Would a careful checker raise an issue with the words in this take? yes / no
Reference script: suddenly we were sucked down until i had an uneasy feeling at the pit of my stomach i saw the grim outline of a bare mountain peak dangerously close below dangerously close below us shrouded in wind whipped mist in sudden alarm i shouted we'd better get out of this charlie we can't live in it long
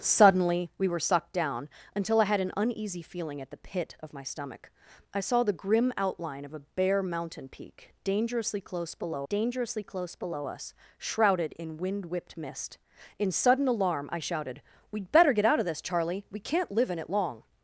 no